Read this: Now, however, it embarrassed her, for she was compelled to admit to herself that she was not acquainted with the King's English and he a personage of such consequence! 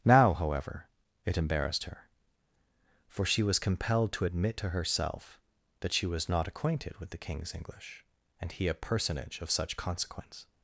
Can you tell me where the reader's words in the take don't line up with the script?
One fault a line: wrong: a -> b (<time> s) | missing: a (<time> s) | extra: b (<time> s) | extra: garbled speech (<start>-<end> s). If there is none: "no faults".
no faults